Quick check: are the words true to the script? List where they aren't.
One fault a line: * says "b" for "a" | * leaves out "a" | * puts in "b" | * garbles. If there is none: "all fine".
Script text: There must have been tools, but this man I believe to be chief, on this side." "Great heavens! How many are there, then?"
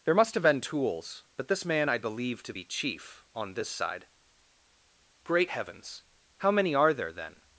all fine